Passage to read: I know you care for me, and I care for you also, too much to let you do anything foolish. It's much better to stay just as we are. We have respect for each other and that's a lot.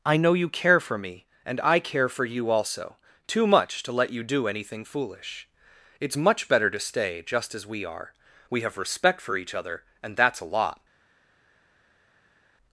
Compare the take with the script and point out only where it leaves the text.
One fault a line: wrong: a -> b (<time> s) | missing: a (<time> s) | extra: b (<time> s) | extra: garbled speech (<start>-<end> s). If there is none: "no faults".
no faults